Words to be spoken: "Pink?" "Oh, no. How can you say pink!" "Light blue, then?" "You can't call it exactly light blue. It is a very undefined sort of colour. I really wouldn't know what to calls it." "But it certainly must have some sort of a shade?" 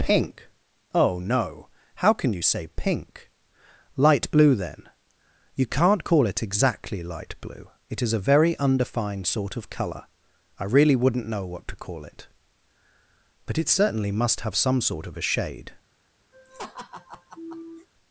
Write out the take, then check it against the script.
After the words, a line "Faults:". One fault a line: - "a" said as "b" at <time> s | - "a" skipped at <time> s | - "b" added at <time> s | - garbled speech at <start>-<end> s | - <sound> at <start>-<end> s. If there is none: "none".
"Pink?" "Oh, no. How can you say pink!" "Light blue, then?" "You can't call it exactly light blue. It is a very undefined sort of colour. I really wouldn't know what to call it." "But it certainly must have some sort of a shade?"
Faults:
- "calls" said as "call" at 11.8 s
- laugh at 16.3-17.9 s